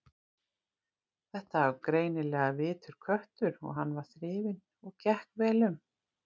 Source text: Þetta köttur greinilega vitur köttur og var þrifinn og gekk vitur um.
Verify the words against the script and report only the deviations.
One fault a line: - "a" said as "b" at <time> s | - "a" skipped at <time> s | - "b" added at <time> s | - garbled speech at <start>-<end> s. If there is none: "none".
- "köttur" said as "var" at 1.6 s
- "hann" added at 3.8 s
- "vitur" said as "vel" at 5.5 s